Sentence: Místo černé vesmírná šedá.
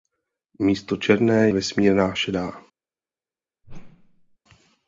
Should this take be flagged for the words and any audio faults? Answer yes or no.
yes